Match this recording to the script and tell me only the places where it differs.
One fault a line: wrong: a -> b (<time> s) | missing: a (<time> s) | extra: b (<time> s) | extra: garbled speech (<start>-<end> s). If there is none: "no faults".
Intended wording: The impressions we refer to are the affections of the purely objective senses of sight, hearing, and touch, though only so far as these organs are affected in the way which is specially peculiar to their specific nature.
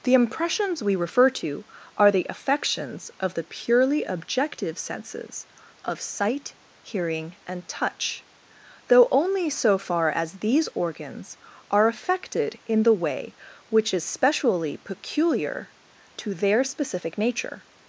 no faults